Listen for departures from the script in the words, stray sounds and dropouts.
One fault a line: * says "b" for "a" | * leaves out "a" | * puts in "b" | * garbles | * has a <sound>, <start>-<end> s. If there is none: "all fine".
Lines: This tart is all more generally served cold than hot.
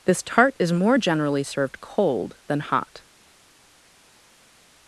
* leaves out "all"